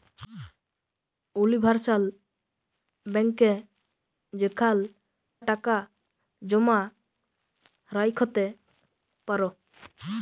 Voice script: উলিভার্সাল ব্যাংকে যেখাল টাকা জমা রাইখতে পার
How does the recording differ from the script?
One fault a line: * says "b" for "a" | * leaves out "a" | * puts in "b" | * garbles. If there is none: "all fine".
all fine